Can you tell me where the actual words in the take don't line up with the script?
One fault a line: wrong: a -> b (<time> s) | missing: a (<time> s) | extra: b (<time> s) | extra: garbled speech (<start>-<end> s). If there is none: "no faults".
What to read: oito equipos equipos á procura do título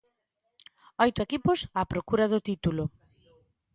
missing: equipos (1.6 s)